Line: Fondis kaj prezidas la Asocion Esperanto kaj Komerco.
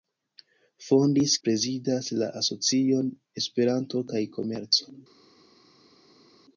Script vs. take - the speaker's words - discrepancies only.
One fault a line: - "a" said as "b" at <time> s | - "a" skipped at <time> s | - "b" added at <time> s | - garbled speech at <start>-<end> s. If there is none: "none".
- "kaj" skipped at 1.4 s